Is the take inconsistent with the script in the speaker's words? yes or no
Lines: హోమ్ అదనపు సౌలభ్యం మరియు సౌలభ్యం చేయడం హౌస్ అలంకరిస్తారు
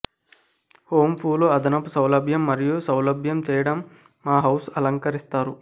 yes